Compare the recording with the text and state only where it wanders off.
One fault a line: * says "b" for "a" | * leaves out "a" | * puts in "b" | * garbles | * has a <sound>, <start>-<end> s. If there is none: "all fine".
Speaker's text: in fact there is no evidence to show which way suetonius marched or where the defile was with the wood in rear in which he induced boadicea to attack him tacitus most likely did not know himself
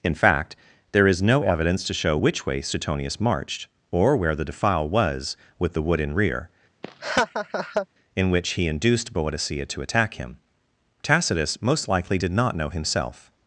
* has a laugh, 6.8-7.9 s